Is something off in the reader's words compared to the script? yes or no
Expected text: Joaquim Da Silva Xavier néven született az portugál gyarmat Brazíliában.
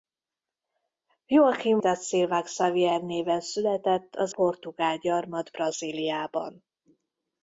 no